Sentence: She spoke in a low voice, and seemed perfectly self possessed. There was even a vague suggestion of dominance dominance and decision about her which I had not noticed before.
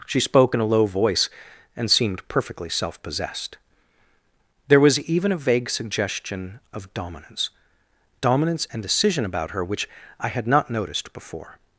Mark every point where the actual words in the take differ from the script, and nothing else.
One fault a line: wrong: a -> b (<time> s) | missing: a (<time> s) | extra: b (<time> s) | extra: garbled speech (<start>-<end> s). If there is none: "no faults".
no faults